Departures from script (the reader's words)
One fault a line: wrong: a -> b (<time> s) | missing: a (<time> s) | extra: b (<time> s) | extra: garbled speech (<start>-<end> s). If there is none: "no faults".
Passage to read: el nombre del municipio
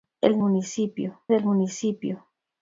wrong: nombre -> municipio (0.4 s)